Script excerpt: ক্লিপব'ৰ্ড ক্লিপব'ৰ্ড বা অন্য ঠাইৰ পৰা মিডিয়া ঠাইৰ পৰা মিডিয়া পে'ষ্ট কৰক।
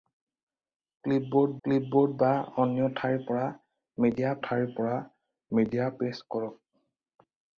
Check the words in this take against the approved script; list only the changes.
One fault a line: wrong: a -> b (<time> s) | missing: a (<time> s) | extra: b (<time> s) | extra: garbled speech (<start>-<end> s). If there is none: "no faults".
no faults